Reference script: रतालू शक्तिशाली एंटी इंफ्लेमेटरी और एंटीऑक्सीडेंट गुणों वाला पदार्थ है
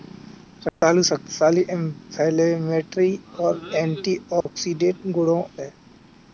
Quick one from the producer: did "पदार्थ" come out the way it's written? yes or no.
no